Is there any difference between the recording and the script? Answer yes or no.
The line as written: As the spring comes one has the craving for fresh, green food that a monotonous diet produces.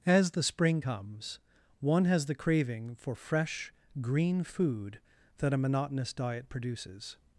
no